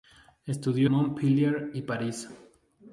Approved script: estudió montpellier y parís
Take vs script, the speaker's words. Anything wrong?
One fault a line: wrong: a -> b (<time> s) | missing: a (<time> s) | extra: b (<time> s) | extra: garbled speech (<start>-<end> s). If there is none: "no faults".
no faults